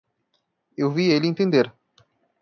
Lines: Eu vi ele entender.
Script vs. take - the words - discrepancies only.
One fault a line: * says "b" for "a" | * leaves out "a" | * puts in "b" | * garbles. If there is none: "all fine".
all fine